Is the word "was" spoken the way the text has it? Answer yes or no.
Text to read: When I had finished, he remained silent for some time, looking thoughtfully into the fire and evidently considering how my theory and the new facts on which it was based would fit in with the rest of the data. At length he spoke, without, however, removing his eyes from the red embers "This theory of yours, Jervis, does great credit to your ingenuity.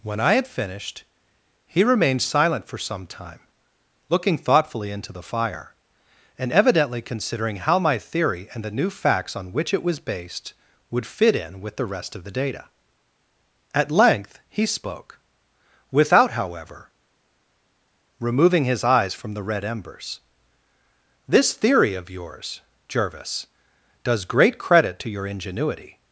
yes